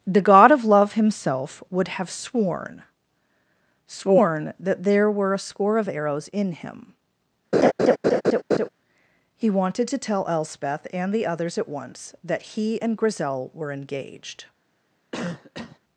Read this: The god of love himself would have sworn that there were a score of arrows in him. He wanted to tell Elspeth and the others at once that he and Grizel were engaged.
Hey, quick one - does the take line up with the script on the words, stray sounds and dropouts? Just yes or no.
no